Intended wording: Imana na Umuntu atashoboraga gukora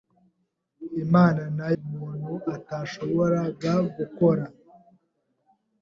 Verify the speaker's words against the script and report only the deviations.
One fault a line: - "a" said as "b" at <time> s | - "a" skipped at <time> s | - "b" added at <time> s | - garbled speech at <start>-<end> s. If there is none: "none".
none